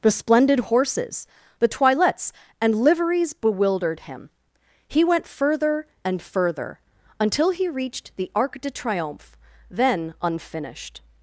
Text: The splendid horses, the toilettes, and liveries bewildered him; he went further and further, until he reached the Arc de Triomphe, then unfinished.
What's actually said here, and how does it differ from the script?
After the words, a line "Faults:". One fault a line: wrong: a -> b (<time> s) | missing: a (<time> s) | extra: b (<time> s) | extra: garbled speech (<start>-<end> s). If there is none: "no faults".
The splendid horses, the toilettes, and liveries bewildered him; he went further and further, until he reached the Arc de Triomphe, then unfinished.
Faults:
no faults